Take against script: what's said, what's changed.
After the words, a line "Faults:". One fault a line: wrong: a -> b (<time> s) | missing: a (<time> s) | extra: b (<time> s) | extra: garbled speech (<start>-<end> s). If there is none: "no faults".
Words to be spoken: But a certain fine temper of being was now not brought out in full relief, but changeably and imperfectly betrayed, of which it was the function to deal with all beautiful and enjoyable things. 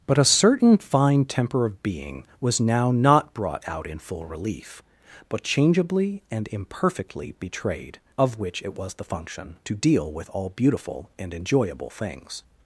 But a certain fine temper of being was now not brought out in full relief, but changeably and imperfectly betrayed, of which it was the function to deal with all beautiful and enjoyable things.
Faults:
no faults